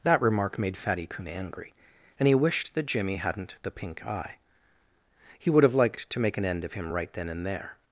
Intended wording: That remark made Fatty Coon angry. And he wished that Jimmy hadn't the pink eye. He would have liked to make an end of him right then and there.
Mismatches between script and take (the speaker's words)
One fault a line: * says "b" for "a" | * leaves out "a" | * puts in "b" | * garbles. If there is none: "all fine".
all fine